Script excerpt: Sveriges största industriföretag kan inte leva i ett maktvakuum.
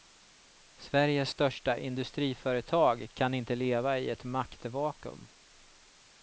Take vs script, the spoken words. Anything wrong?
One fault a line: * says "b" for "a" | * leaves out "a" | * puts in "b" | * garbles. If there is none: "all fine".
all fine